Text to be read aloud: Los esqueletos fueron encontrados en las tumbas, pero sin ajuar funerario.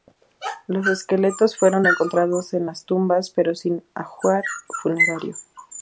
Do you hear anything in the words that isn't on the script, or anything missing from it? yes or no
no